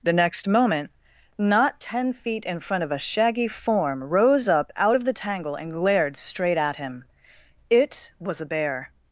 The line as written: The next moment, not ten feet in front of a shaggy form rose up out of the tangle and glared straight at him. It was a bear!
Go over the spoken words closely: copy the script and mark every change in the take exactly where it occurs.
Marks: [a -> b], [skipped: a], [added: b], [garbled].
The next moment, not ten feet in front of a shaggy form rose up out of the tangle and glared straight at him. It was a bear!